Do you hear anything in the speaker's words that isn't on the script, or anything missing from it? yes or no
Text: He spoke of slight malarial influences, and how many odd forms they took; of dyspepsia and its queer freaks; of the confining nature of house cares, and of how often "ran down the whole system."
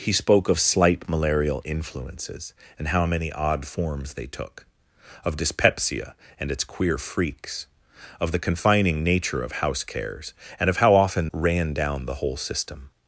no